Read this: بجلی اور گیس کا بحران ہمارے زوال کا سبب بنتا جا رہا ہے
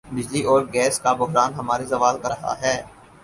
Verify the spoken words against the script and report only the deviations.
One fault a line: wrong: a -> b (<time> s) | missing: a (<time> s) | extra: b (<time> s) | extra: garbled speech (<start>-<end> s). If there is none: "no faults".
missing: سبب بنتا جا (2.3 s)